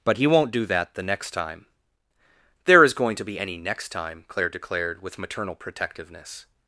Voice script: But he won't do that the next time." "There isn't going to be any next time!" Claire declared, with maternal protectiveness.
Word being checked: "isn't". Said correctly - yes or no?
no